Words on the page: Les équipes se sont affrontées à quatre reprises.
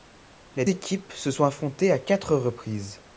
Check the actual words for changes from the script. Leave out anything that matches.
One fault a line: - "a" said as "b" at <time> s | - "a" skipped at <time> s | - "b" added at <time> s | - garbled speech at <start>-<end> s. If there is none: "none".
none